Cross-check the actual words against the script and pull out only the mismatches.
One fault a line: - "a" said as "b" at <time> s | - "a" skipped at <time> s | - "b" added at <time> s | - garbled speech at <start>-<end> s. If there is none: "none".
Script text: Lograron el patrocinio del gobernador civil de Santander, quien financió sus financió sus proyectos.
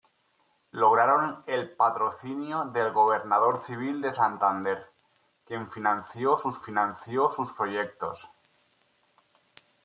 none